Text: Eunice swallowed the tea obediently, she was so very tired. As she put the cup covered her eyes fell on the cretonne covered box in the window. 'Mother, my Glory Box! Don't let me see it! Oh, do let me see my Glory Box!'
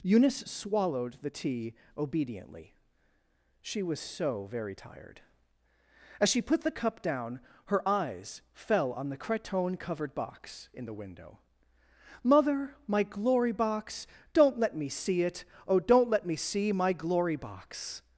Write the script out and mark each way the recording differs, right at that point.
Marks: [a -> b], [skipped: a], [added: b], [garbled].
Eunice swallowed the tea obediently, she was so very tired. As she put the cup [covered -> down] her eyes fell on the cretonne covered box in the window. 'Mother, my Glory Box! Don't let me see it! Oh, [do -> don't] let me see my Glory Box!'